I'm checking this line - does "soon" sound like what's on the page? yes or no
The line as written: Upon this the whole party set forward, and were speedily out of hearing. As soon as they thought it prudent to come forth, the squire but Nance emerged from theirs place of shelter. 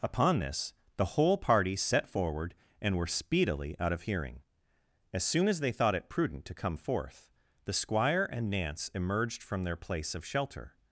yes